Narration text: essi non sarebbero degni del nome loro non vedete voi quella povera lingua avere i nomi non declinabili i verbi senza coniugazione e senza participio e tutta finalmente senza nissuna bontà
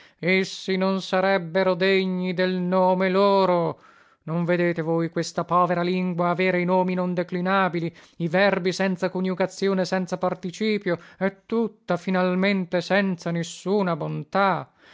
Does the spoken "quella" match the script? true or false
false